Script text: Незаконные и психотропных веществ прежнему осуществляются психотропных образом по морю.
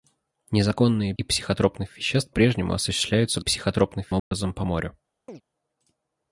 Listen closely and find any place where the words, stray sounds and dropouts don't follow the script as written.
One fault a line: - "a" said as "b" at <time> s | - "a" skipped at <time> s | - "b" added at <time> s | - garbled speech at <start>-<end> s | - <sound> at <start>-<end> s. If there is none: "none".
- dropout at 4.2-4.3 s
- chirp at 5.3-5.4 s